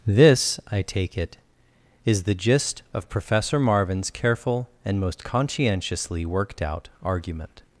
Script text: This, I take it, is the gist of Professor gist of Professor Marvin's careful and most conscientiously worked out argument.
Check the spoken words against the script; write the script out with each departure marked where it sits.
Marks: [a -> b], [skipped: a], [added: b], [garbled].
This, I take it, is the gist of Professor [skipped: gist of Professor] Marvin's careful and most conscientiously worked out argument.